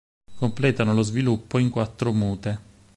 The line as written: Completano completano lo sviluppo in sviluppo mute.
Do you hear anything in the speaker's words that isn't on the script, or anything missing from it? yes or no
yes